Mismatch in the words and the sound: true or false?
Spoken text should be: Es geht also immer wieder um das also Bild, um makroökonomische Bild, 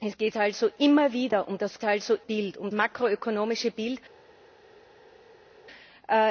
false